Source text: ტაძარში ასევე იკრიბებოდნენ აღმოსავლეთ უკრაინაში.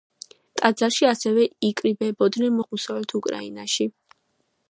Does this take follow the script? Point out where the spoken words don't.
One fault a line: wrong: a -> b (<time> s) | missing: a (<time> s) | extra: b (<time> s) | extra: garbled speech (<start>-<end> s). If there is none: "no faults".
no faults